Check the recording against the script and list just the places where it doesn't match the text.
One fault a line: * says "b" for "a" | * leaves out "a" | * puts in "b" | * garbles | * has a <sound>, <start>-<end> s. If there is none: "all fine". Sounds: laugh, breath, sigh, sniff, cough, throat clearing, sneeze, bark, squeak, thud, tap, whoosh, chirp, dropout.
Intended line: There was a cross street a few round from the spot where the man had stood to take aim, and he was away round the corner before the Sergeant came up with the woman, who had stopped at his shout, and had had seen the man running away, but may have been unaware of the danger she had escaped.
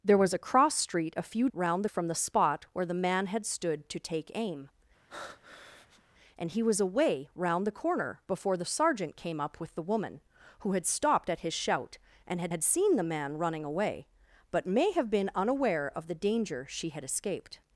* has a breath, 5.1-6.0 s